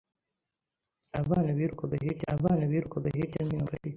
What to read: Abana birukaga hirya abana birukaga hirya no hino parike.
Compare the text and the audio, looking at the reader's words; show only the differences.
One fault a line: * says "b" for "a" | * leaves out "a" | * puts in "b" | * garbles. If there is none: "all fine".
all fine